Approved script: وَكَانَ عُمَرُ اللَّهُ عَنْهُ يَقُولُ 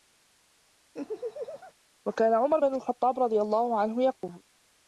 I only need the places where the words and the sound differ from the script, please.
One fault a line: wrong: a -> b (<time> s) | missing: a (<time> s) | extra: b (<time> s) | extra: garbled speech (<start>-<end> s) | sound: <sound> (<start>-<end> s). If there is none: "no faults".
sound: laugh (0.9-1.7 s)
extra: بْنُ الْخَطَّابِ رَضِيَ (2.6 s)
sound: dropout (4.2-4.2 s)